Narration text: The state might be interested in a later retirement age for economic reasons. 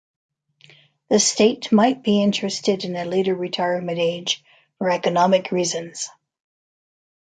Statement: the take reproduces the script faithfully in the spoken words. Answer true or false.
true